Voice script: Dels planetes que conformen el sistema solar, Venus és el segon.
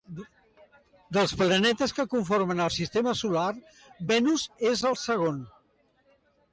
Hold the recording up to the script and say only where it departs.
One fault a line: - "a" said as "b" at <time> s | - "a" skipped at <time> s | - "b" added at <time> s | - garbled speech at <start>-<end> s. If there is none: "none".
none